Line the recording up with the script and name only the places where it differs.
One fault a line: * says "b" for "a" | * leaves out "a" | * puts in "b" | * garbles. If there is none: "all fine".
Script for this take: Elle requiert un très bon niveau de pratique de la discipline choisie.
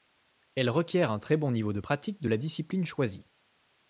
all fine